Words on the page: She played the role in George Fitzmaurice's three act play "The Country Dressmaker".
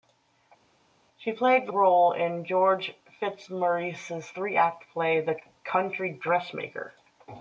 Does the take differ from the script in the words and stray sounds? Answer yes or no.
no